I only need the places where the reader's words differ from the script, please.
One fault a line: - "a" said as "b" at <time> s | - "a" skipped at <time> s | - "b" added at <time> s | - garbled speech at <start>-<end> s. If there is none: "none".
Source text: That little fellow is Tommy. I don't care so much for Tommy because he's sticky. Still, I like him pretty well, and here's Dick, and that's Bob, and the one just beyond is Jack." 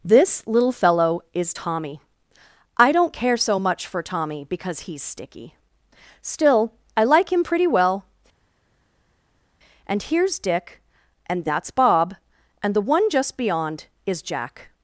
- "That" said as "This" at 0.0 s